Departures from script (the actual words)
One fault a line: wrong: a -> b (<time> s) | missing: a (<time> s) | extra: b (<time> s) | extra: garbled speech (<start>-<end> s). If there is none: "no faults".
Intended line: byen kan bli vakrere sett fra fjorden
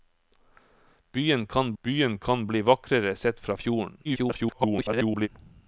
extra: byen kan (1.8 s)
extra: garbled speech (4.0-5.3 s)